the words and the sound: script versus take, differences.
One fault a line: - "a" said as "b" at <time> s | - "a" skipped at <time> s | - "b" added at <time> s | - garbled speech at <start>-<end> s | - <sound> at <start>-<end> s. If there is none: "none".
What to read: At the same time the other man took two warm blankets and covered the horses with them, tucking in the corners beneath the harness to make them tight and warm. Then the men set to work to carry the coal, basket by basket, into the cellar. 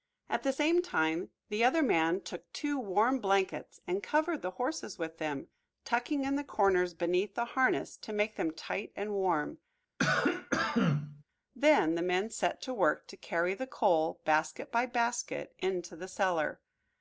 - cough at 10.0-11.2 s